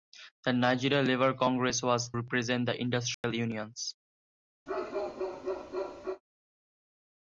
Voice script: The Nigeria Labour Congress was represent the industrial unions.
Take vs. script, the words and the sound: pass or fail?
fail